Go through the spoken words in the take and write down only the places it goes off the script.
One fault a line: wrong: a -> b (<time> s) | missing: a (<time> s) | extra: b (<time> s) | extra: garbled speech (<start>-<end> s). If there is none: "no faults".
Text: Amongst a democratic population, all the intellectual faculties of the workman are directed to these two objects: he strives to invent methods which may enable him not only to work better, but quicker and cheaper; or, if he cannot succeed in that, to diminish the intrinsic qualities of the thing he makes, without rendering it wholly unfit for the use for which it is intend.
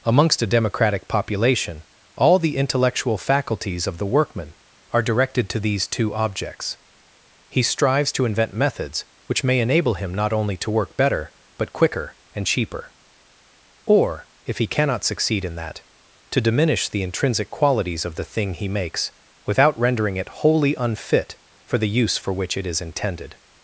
wrong: intend -> intended (22.8 s)